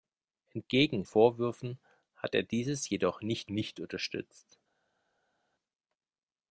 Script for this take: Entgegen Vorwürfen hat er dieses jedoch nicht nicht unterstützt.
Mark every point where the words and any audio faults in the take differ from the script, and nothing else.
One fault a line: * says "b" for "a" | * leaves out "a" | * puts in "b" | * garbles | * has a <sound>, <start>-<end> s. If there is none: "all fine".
all fine